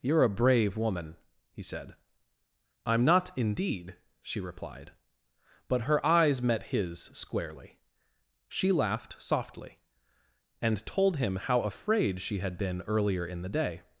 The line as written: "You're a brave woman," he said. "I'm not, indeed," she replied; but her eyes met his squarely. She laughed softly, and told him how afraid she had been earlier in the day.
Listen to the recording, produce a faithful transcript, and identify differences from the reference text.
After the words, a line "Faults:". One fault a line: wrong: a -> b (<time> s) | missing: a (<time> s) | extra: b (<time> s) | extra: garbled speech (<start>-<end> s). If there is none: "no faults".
"You're a brave woman," he said. "I'm not, indeed," she replied; but her eyes met his squarely. She laughed softly, and told him how afraid she had been earlier in the day.
Faults:
no faults